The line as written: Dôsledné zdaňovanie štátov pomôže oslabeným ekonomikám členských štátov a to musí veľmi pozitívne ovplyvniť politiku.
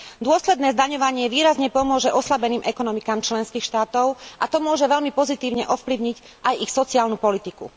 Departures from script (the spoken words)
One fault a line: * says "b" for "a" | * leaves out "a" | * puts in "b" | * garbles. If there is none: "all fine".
* says "výrazne" for "štátov"
* says "môže" for "musí"
* puts in "aj ich sociálnu"